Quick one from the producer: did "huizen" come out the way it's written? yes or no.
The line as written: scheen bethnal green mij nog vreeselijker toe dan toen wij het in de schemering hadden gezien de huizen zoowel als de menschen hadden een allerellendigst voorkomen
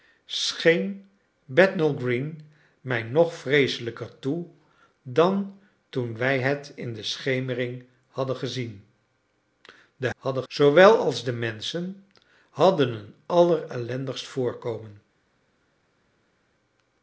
no